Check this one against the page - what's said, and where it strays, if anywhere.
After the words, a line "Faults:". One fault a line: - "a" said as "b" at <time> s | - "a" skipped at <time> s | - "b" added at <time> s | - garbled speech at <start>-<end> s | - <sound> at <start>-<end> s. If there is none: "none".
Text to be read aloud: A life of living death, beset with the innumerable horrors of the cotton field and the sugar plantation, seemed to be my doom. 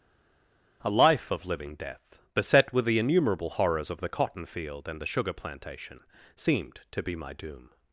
A life of living death, beset with the innumerable horrors of the cotton field and the sugar plantation, seemed to be my doom.
Faults:
none